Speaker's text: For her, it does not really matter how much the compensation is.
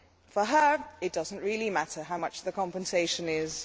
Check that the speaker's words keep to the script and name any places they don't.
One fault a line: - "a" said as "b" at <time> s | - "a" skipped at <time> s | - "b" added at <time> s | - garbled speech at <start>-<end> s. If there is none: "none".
none